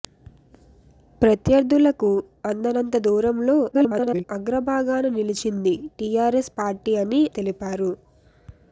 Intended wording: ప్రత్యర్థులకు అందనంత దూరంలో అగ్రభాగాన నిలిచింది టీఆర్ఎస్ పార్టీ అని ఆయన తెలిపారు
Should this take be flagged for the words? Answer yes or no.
yes